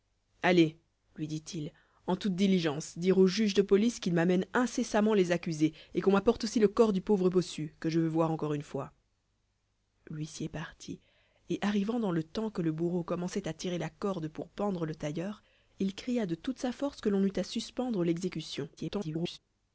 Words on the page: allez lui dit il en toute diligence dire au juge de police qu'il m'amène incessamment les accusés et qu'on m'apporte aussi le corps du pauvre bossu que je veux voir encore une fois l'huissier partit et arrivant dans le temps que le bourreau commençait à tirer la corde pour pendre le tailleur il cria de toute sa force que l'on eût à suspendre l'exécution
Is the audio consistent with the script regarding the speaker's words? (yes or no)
no